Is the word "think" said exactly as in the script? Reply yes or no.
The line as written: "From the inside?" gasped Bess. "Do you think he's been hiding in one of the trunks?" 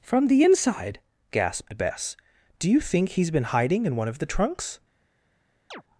yes